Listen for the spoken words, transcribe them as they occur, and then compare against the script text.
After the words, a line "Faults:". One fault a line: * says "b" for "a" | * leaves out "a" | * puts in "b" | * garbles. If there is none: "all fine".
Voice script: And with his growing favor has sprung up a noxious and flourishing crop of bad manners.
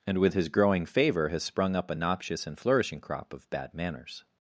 And with his growing favor has sprung up a noxious and flourishing crop of bad manners.
Faults:
all fine